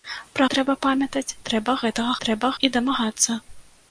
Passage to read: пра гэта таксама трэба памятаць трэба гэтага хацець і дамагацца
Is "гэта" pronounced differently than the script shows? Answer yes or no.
yes